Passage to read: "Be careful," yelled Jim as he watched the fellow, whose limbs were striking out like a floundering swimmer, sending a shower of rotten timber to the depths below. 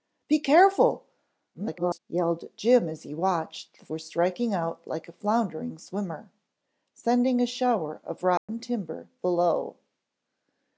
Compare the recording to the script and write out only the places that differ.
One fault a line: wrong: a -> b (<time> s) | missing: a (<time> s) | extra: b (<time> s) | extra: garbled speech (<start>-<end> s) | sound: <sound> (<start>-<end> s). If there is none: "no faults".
extra: garbled speech (1.5-2.0 s)
missing: fellow whose limbs (3.9 s)
sound: dropout (8.4-8.5 s)
missing: to the depths (9.1 s)